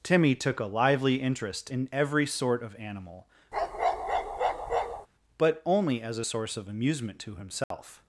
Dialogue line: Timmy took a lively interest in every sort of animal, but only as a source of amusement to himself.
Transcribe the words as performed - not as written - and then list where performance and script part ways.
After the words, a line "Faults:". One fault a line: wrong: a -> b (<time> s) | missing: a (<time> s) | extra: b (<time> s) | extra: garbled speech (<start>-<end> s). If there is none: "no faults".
Timmy took a lively interest in every sort of animal, but only as a source of amusement to himself.
Faults:
no faults